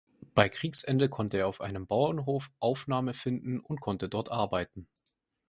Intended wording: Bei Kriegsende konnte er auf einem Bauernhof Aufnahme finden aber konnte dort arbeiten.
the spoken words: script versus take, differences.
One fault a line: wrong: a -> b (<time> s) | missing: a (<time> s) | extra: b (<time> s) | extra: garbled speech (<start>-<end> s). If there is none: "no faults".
wrong: aber -> und (3.6 s)